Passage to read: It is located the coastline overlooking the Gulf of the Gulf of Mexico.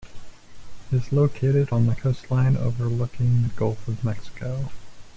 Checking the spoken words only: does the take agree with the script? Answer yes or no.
no